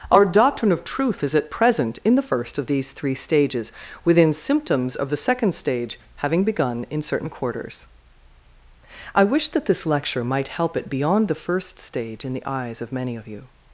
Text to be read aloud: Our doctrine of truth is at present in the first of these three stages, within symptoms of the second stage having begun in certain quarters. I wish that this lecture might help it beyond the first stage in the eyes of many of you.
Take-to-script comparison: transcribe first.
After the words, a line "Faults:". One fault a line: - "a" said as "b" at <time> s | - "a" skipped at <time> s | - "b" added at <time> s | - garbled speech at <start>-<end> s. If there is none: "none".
Our doctrine of truth is at present in the first of these three stages, within symptoms of the second stage having begun in certain quarters. I wish that this lecture might help it beyond the first stage in the eyes of many of you.
Faults:
none